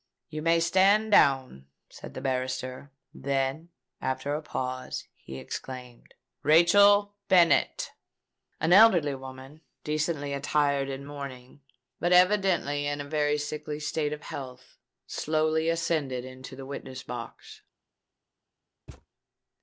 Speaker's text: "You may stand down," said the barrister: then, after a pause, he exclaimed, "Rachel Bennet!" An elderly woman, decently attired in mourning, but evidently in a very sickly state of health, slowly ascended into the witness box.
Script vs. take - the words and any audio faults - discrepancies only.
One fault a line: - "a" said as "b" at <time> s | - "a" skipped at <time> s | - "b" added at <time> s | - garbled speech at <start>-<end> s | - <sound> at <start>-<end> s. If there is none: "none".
- thud at 18.9-19.1 s